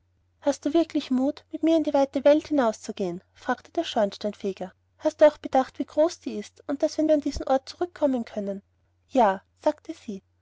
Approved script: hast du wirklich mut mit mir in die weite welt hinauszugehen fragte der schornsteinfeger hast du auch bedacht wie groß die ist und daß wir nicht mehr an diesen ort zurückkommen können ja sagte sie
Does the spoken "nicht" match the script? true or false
false